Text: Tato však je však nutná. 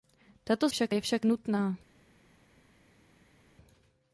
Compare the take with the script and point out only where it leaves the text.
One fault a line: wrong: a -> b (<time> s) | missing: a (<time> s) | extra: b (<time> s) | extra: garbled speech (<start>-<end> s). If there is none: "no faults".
no faults